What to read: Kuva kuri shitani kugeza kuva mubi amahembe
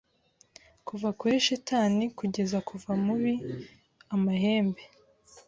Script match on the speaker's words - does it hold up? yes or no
yes